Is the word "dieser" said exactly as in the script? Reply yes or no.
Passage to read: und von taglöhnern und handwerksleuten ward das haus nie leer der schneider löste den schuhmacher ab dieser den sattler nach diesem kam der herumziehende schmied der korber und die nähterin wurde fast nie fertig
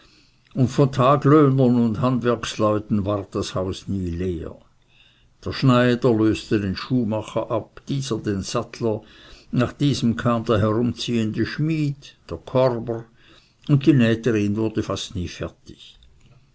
yes